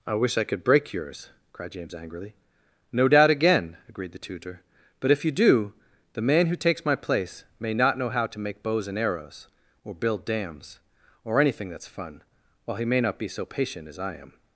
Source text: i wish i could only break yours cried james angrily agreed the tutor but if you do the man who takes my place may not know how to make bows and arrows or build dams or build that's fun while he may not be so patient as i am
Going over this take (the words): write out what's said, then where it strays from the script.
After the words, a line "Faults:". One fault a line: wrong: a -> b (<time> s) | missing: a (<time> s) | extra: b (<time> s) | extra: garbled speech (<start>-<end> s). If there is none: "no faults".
i wish i could break yours cried james angrily no doubt again agreed the tutor but if you do the man who takes my place may not know how to make bows and arrows or build dams or anything that's fun while he may not be so patient as i am
Faults:
missing: only (0.6 s)
extra: no doubt again (2.9 s)
wrong: build -> anything (11.4 s)